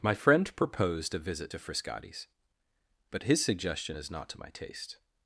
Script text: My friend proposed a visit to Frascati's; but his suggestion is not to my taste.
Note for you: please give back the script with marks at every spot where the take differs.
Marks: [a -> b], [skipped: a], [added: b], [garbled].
My friend proposed a visit to Frascati's; but his suggestion is not to my taste.